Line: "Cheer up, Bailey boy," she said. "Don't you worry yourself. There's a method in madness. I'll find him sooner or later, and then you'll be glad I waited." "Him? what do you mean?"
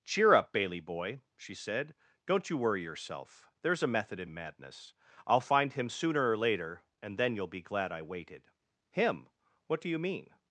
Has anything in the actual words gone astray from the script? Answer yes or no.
no